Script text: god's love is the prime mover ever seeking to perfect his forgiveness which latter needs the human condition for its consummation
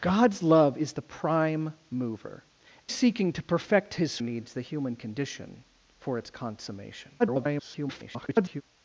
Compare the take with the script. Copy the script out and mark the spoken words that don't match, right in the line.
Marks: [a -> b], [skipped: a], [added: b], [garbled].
god's love is the prime mover [skipped: ever] seeking to perfect his [skipped: forgiveness which latter] needs the human condition for its consummation [garbled]